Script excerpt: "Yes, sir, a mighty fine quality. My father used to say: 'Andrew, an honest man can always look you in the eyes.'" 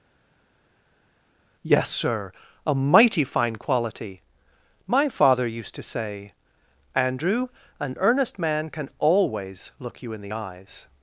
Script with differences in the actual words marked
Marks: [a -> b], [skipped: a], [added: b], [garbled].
"Yes, sir, a mighty fine quality. My father used to say: 'Andrew, an [honest -> earnest] man can always look you in the eyes.'"